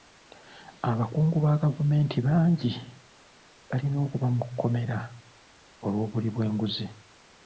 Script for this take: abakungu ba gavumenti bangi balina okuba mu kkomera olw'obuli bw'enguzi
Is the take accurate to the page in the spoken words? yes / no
yes